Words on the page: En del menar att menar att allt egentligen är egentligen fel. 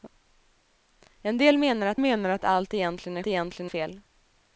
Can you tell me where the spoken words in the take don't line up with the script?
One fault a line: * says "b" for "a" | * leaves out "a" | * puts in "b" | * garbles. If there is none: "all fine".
all fine